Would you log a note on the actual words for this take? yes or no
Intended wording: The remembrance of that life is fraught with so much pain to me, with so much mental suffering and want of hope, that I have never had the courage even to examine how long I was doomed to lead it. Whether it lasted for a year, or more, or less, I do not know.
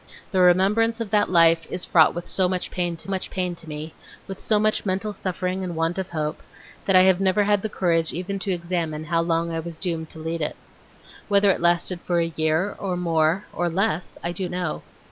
yes